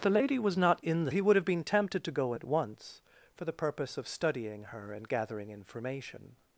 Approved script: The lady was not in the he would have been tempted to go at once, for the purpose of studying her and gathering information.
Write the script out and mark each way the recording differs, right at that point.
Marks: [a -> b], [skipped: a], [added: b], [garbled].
The lady was not in the he would have been tempted to go at once, for the purpose of studying her and gathering information.